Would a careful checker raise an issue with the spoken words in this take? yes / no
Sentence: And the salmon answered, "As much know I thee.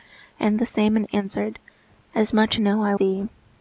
no